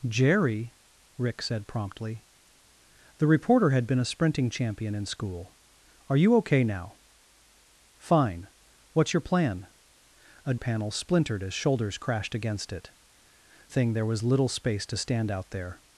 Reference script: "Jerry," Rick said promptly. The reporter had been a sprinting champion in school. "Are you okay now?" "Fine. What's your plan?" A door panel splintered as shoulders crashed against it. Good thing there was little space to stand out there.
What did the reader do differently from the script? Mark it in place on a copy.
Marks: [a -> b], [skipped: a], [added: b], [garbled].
"Jerry," Rick said promptly. The reporter had been a sprinting champion in school. "Are you okay now?" "Fine. What's your plan?" A [skipped: door] panel splintered as shoulders crashed against it. [skipped: Good] thing there was little space to stand out there.